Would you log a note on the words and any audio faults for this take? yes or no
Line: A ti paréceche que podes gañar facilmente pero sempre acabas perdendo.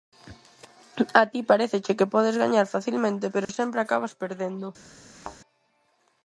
yes